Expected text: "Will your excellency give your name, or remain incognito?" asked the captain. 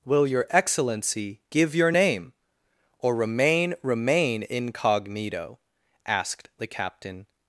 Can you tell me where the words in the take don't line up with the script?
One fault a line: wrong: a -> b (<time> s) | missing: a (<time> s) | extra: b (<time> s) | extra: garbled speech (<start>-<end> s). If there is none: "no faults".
extra: remain (3.8 s)